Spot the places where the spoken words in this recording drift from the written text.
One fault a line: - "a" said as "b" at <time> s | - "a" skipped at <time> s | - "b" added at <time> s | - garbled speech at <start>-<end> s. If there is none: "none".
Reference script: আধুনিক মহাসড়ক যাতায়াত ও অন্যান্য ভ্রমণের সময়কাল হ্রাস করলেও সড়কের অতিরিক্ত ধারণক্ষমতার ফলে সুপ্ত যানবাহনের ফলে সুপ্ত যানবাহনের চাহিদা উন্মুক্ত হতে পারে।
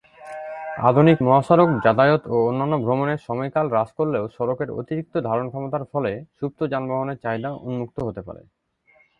- "ফলে সুপ্ত যানবাহনের" skipped at 7.2 s